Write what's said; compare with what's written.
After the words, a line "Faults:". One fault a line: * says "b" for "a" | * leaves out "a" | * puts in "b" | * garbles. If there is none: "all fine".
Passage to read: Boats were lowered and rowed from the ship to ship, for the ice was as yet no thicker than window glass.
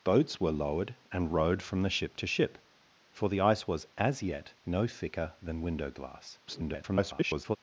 Boats were lowered and rowed from the ship to ship, for the ice was as yet no thicker than window glass. [garbled]
Faults:
* garbles